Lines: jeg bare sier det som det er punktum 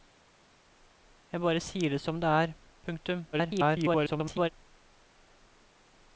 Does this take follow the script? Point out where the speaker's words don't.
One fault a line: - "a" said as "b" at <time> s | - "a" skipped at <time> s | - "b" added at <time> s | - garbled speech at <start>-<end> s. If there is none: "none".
- garbled speech at 3.3-4.5 s